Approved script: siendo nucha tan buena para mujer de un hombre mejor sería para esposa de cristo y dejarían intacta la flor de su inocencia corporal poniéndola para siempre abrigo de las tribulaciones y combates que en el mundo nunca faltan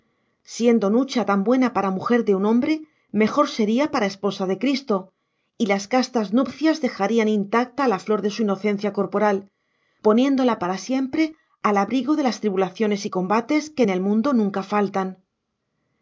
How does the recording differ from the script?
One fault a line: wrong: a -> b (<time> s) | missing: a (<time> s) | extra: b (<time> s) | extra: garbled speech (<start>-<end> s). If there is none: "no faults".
extra: las castas nupcias (5.7 s)
extra: al (11.6 s)